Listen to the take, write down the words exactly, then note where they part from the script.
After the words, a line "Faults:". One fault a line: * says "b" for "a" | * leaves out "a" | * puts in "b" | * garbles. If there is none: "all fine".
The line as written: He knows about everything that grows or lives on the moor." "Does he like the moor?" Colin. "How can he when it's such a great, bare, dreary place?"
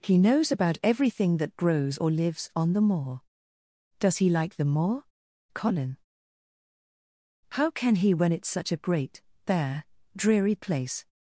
He knows about everything that grows or lives on the moor." "Does he like the moor?" Colin. "How can he when it's such a great, bare, dreary place?"
Faults:
all fine